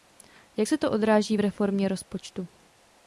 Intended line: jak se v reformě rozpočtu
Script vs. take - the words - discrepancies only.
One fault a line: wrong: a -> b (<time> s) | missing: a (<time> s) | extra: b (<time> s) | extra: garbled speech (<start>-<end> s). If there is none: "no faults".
extra: to odráží (0.8 s)